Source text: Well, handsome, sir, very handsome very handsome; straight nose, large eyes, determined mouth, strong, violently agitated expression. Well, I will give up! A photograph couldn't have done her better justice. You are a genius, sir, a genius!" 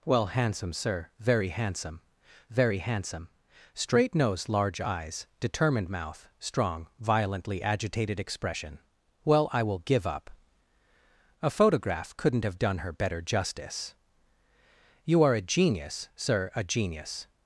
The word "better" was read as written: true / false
true